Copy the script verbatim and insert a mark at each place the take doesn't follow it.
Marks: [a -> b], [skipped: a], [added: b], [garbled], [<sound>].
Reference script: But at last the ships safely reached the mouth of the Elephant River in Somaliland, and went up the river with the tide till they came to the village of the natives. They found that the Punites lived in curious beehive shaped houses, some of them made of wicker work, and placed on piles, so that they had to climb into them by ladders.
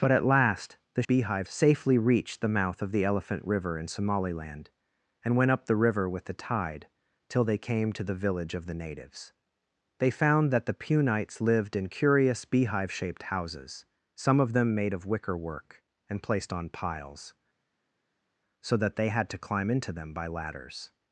But at last the [ships -> beehive] safely reached the mouth of the Elephant River in Somaliland, and went up the river with the tide till they came to the village of the natives. They found that the Punites lived in curious beehive shaped houses, some of them made of wicker work, and placed on piles, so that they had to climb into them by ladders.